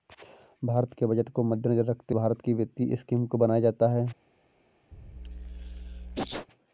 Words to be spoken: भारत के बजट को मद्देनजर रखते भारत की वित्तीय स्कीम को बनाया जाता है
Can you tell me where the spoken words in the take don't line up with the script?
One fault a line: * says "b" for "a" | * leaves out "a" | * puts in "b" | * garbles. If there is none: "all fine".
all fine